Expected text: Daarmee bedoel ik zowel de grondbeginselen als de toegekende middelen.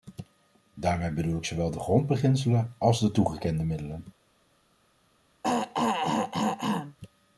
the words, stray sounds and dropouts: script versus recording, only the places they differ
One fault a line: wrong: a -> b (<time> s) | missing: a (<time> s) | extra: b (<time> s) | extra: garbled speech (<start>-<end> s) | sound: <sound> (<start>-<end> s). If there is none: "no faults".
sound: throat clearing (5.4-7.0 s)